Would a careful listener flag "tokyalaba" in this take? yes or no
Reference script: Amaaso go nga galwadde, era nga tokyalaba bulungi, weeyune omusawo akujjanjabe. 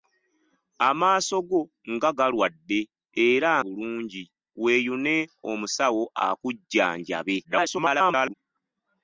yes